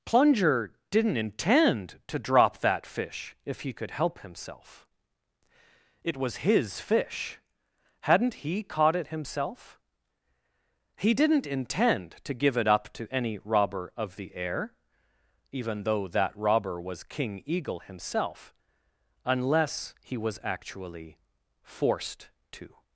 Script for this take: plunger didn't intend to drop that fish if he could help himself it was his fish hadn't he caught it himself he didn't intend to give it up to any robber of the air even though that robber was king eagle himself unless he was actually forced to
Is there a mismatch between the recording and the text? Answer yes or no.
no